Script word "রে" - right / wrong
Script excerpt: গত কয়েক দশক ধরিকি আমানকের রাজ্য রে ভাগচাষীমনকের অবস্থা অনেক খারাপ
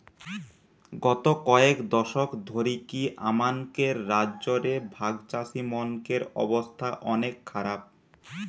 right